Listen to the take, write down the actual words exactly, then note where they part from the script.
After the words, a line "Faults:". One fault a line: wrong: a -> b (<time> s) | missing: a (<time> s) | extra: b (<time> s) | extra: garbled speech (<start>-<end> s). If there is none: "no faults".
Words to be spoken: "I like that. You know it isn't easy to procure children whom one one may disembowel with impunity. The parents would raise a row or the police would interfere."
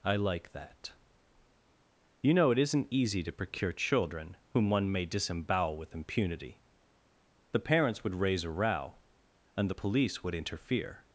"I like that. You know it isn't easy to procure children whom one may disembowel with impunity. The parents would raise a row and the police would interfere."
Faults:
missing: one (4.9 s)
wrong: or -> and (9.5 s)